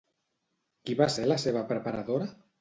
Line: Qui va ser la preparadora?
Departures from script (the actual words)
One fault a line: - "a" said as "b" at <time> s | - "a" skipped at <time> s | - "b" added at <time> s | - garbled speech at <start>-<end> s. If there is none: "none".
- "seva" added at 1.4 s